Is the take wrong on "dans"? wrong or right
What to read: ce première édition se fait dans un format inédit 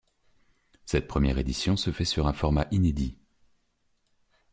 wrong